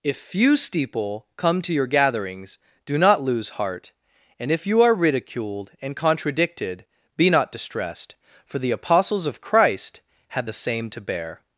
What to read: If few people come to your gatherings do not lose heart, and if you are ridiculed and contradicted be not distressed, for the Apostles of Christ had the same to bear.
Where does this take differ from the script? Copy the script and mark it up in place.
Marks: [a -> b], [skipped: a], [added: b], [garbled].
If few [people -> steeple] come to your gatherings do not lose heart, and if you are ridiculed and contradicted be not distressed, for the Apostles of Christ had the same to bear.